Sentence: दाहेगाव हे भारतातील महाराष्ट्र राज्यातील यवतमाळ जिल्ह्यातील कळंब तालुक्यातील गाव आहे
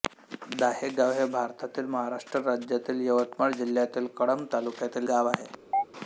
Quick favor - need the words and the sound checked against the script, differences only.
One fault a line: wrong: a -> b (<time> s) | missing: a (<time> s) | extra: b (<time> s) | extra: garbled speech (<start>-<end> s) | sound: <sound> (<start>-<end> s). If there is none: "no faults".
sound: chirp (5.7-5.8 s)